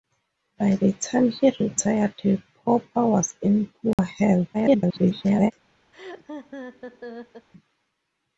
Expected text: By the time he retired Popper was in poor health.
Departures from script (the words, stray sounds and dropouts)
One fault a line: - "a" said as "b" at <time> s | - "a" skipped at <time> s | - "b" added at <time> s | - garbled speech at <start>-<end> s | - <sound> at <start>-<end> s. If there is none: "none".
- dropout at 3.9-4.0 s
- garbled speech at 4.5-5.5 s
- laugh at 5.9-7.5 s